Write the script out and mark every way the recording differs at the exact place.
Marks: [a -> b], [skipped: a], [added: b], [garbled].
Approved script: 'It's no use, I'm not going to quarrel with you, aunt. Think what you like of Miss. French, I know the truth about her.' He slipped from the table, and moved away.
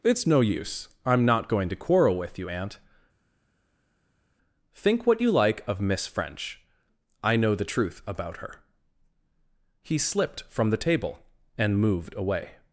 'It's no use, I'm not going to quarrel with you, aunt. Think what you like of Miss. French, I know the truth about her.' He slipped from the table, and moved away.